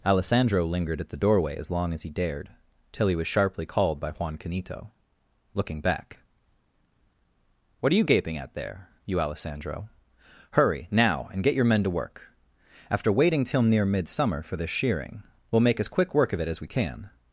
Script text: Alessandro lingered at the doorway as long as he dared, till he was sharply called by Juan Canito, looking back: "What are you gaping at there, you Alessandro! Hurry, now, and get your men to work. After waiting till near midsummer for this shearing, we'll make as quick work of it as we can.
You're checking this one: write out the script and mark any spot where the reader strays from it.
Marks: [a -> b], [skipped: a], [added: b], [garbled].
Alessandro lingered at the doorway as long as he dared, till he was sharply called by Juan Canito, looking back: "What are you gaping at there, you Alessandro! Hurry, now, and get your men to work. After waiting till near midsummer for this shearing, we'll make as quick work of it as we can.